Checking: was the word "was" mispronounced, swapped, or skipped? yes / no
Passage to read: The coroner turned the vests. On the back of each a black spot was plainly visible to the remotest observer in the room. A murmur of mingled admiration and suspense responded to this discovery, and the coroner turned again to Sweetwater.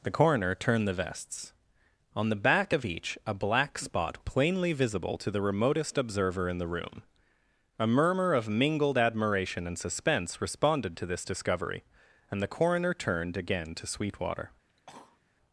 yes